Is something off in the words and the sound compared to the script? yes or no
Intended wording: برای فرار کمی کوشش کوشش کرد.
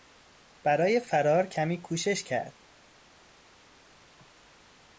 yes